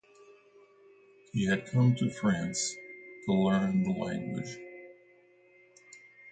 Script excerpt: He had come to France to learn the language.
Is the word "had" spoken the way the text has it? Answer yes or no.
yes